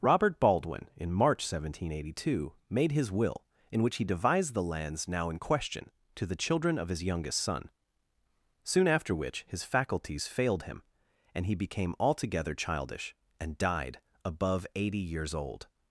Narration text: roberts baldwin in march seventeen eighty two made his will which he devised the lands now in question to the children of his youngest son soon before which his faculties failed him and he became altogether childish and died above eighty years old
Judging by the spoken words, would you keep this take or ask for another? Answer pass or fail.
fail